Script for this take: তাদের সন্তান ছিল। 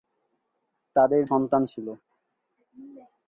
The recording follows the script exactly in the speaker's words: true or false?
true